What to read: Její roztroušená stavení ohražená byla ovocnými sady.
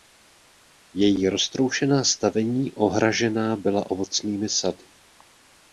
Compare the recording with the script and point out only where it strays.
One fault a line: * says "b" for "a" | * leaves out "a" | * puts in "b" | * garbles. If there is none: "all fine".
all fine